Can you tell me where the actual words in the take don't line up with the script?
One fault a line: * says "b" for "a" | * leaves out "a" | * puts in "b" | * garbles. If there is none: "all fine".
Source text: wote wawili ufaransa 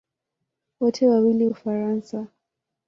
all fine